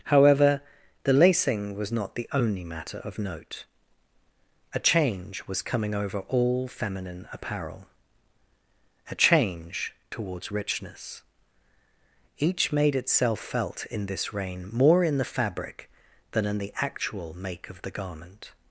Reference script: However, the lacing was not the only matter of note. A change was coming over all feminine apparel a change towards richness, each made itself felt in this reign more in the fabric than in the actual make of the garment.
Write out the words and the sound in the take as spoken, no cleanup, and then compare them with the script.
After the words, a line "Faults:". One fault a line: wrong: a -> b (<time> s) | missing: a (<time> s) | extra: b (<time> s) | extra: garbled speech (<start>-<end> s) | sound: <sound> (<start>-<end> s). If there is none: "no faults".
However, the lacing was not the only matter of note. A change was coming over all feminine apparel a change towards richness, each made itself felt in this reign more in the fabric than in the actual make of the garment.
Faults:
no faults